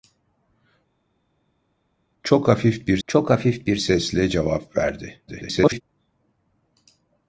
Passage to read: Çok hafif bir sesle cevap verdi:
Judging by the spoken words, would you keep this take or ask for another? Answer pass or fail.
fail